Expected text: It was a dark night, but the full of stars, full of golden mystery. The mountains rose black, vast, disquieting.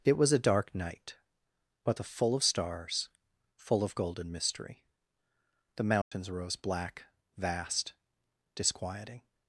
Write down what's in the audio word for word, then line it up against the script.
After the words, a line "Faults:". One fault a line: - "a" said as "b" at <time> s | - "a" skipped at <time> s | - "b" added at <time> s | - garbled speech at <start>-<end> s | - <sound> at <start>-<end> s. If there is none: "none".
It was a dark night, but the full of stars, full of golden mystery. The mountains rose black, vast, disquieting.
Faults:
- dropout at 6.0-6.1 s